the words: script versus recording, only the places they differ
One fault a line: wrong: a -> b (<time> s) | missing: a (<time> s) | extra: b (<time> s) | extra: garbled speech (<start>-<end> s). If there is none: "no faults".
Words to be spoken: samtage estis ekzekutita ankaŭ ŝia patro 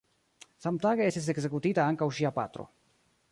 no faults